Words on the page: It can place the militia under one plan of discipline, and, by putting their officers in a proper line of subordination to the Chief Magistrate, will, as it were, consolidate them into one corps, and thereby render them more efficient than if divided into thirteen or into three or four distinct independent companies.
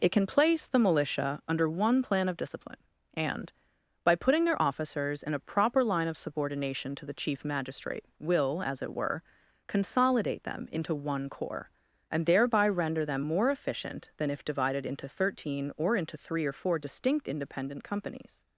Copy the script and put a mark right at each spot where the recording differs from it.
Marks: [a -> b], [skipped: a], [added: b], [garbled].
It can place the militia under one plan of discipline, and, by putting their officers in a proper line of subordination to the Chief Magistrate, will, as it were, consolidate them into one corps, and thereby render them more efficient than if divided into thirteen or into three or four distinct independent companies.